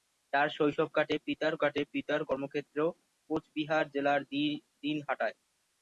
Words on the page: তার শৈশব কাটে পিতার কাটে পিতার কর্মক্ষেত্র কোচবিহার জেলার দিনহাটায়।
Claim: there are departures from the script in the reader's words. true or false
false